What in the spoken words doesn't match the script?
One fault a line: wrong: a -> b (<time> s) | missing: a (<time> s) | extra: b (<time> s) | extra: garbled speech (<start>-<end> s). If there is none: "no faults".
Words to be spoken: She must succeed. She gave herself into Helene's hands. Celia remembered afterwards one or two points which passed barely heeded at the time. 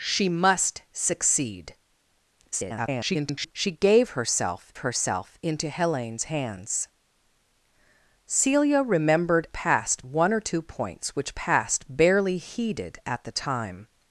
extra: garbled speech (2.5-3.5 s)
extra: herself (4.8 s)
wrong: afterwards -> passed (9.5 s)